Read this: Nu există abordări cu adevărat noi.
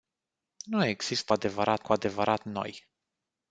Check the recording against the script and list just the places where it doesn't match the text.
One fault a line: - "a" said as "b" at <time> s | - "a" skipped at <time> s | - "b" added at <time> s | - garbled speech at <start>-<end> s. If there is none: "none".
- "abordări" said as "adevărat" at 1.3 s